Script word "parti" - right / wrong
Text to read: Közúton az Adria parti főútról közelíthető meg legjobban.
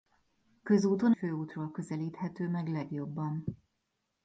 wrong